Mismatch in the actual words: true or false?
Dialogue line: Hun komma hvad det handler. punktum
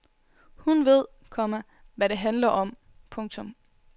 true